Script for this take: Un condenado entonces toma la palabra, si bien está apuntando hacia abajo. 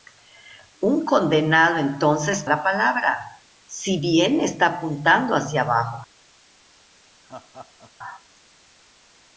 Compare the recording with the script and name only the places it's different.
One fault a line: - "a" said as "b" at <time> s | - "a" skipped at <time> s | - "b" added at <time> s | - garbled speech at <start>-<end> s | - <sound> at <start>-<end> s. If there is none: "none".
- "toma" skipped at 2.5 s
- laugh at 7.2-7.9 s